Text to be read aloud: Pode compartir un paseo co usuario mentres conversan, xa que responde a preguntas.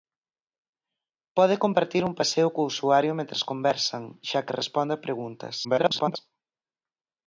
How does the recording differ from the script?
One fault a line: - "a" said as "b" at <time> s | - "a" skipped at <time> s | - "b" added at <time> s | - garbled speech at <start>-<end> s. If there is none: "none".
- garbled speech at 5.6-6.2 s